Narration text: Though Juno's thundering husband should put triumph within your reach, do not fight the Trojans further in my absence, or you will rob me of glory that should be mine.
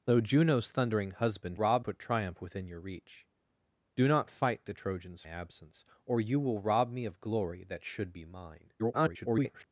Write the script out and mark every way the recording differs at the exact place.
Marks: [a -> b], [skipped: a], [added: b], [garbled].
Though Juno's thundering husband [should -> rob] put triumph within your reach, do not fight the Trojans [skipped: further in my] absence, or you will rob me of glory that should be mine. [garbled]